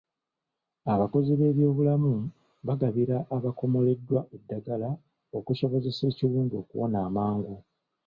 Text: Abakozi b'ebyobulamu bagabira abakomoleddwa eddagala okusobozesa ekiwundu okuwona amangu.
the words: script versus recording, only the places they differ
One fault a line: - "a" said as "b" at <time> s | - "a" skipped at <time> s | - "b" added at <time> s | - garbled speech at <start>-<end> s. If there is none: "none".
none